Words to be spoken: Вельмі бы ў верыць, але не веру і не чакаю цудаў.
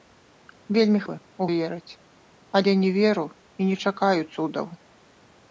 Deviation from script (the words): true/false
false